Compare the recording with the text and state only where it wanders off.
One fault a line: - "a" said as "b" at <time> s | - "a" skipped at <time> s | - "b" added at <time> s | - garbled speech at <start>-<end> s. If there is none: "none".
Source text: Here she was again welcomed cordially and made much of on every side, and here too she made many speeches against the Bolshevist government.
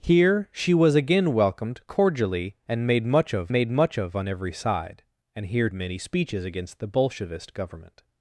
- "made much of" added at 3.5 s
- "too she made" skipped at 5.7 s